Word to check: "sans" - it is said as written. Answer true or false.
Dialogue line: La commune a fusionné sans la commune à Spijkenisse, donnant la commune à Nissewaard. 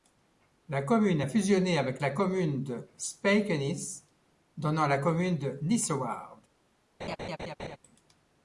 false